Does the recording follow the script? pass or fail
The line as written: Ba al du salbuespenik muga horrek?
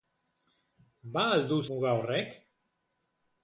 fail